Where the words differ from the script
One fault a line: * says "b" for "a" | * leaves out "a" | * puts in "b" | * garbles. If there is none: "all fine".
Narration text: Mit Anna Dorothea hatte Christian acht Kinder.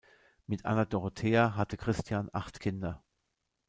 all fine